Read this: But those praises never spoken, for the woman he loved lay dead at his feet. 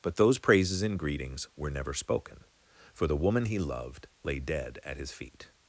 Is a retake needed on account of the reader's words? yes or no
yes